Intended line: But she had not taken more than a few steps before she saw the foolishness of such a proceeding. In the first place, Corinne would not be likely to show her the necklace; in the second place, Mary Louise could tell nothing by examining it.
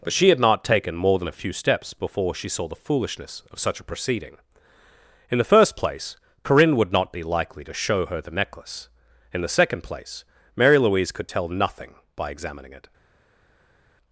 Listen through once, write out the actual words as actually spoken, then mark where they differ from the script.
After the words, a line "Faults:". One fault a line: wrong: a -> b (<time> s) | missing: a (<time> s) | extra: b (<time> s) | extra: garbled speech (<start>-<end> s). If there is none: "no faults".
But she had not taken more than a few steps before she saw the foolishness of such a proceeding. In the first place, Corinne would not be likely to show her the necklace; in the second place, Mary Louise could tell nothing by examining it.
Faults:
no faults